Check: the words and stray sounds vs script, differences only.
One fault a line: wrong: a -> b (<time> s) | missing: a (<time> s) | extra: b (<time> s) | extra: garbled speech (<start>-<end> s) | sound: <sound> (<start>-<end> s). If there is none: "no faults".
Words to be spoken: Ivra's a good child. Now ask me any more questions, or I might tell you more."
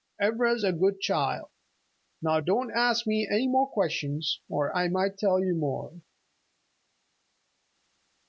extra: don't (2.4 s)